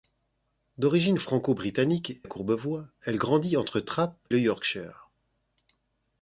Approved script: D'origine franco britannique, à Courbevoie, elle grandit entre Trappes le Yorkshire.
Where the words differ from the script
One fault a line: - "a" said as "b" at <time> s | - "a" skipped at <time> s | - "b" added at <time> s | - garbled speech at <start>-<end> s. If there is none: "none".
none